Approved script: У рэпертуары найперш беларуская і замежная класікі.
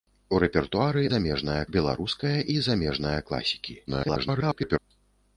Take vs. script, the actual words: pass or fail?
fail